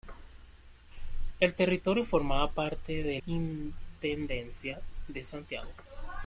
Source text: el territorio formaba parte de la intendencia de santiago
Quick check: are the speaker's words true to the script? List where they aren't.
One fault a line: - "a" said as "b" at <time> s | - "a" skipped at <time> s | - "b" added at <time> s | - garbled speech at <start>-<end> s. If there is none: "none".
- "la" skipped at 3.2 s